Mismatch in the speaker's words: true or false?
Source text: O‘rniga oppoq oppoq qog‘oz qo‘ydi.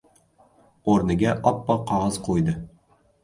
true